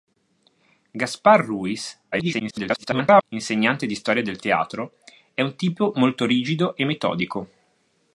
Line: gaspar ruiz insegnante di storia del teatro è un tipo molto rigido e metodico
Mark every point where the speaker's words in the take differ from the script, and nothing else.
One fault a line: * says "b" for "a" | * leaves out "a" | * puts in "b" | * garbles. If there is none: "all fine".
* garbles